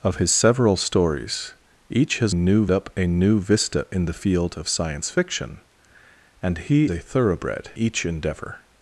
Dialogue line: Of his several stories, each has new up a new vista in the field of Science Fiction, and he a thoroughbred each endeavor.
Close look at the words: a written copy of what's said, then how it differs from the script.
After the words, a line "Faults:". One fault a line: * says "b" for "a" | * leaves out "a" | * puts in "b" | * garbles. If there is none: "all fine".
Of his several stories, each has new up a new vista in the field of Science Fiction, and he a thoroughbred each endeavor.
Faults:
all fine